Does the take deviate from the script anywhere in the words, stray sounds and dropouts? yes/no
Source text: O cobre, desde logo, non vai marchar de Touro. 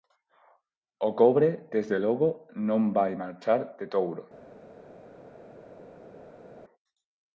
no